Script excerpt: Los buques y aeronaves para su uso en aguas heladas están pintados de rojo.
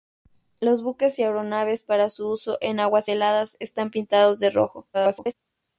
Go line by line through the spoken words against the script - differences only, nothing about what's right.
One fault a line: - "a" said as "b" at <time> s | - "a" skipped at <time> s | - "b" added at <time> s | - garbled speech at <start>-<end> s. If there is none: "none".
- garbled speech at 4.9-5.3 s